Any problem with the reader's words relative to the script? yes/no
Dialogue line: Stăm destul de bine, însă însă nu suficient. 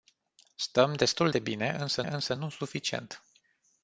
no